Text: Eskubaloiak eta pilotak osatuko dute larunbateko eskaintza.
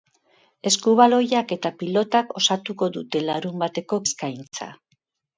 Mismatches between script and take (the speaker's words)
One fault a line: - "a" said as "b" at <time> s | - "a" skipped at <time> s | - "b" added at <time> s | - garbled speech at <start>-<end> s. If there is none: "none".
none